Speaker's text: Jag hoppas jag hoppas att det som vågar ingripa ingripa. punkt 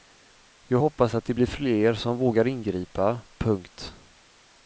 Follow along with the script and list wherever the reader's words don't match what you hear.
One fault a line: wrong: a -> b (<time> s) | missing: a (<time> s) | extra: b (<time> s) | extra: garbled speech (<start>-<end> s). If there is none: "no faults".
wrong: jag hoppas att det -> att det blir fler (1.1 s)
missing: ingripa (3.2 s)